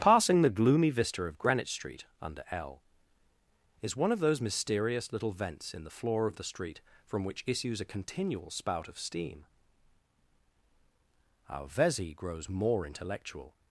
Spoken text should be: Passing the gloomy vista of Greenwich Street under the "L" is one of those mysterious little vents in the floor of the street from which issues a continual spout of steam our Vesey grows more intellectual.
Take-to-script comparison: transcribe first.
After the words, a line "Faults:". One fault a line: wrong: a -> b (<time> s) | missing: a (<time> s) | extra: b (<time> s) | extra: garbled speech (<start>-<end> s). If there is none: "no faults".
Passing the gloomy vista of Greenwich Street under "L" is one of those mysterious little vents in the floor of the street from which issues a continual spout of steam our Vesey grows more intellectual.
Faults:
missing: the (2.4 s)